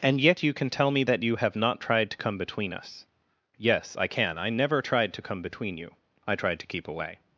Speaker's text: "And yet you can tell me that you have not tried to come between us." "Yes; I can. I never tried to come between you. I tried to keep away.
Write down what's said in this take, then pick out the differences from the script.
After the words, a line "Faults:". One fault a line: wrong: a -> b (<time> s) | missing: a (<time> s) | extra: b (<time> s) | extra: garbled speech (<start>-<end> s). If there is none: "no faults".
"And yet you can tell me that you have not tried to come between us." "Yes; I can. I never tried to come between you. I tried to keep away.
Faults:
no faults